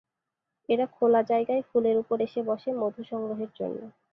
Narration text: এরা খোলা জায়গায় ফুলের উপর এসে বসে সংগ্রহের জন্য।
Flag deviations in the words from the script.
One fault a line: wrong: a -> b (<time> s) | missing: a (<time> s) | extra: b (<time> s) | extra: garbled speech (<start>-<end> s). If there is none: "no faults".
extra: মধু (2.8 s)